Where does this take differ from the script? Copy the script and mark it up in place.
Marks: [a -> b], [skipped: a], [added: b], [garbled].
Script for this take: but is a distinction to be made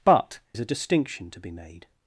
but is a distinction to be made